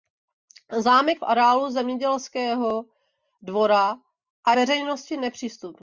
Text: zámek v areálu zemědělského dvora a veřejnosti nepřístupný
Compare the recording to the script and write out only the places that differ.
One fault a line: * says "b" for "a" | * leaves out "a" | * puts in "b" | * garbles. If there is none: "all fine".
all fine